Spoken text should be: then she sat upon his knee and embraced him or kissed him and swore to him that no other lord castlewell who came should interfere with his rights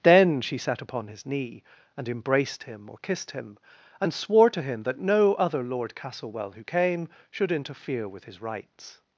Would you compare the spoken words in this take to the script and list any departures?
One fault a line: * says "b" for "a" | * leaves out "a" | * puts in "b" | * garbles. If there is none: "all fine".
all fine